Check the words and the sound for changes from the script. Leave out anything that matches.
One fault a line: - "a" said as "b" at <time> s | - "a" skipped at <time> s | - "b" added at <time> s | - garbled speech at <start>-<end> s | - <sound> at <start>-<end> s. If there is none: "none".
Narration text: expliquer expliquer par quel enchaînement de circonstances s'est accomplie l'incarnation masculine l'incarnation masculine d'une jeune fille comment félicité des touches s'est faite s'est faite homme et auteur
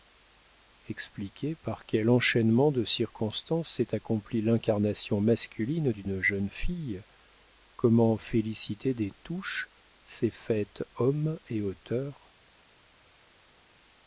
- "expliquer" skipped at 1.6 s
- "l'incarnation masculine" skipped at 5.9 s
- "s'est faite" skipped at 10.8 s